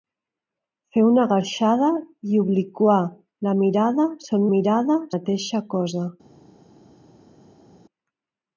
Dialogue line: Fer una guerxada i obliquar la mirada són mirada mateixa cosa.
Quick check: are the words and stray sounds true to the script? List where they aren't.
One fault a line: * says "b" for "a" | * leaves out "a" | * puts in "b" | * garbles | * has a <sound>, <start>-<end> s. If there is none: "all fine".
all fine